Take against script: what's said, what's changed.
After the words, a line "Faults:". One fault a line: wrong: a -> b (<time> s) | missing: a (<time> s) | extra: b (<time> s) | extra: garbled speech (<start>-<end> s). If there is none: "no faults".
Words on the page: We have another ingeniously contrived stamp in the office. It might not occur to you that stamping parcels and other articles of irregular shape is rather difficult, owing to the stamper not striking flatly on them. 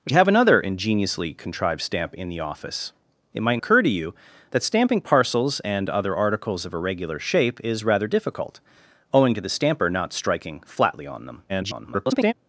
We have another ingeniously contrived stamp in the office. It might occur to you that stamping parcels and other articles of irregular shape is rather difficult, owing to the stamper not striking flatly on them. [garbled]
Faults:
missing: not (3.6 s)
extra: garbled speech (11.5-12.3 s)